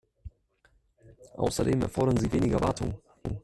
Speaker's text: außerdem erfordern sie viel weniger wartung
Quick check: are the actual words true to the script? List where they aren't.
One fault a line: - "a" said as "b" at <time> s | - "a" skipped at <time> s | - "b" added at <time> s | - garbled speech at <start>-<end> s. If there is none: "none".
- "viel" skipped at 2.3 s